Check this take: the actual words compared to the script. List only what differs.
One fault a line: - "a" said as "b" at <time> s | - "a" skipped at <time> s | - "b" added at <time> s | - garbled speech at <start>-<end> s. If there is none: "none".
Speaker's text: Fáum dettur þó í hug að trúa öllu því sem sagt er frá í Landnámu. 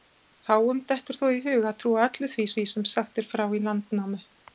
- "því" added at 2.5 s